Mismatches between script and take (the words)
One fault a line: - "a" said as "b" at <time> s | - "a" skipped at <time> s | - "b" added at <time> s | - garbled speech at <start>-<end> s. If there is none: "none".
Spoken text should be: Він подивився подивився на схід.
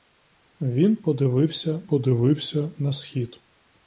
none